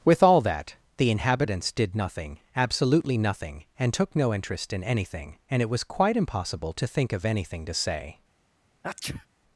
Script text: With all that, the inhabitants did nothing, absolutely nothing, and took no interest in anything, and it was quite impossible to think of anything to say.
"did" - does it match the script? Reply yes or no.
yes